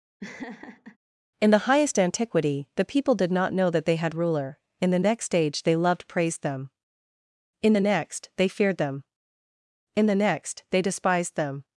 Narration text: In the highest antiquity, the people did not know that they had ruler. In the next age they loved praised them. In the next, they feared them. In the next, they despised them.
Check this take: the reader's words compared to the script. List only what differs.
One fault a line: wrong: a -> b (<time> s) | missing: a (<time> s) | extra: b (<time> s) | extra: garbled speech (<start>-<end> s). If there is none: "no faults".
no faults